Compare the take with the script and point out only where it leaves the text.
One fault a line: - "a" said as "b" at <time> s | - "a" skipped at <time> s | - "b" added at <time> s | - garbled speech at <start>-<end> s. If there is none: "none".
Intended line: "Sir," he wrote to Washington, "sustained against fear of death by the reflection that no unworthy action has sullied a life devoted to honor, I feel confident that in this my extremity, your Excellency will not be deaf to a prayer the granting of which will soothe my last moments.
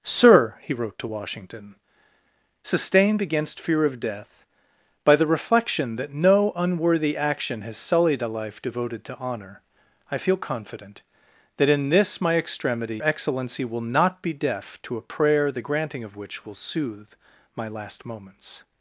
- "your" skipped at 13.0 s